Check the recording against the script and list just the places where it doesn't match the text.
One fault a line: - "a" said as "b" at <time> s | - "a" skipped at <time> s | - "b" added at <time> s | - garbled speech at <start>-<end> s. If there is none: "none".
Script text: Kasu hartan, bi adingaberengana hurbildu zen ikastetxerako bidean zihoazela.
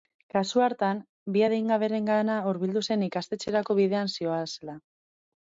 none